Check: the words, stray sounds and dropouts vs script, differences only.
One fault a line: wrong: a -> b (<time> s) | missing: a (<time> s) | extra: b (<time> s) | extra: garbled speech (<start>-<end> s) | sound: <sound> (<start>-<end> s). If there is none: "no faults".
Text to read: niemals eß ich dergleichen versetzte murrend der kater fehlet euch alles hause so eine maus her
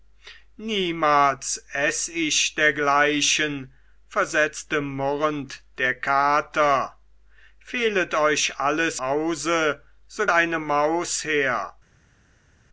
no faults